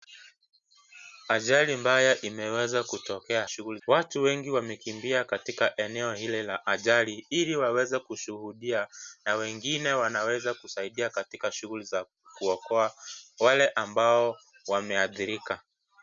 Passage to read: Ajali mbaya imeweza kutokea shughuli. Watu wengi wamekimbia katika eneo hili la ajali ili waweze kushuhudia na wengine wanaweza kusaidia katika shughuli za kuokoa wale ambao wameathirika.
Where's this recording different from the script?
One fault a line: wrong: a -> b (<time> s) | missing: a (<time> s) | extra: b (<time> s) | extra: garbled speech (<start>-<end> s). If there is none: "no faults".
no faults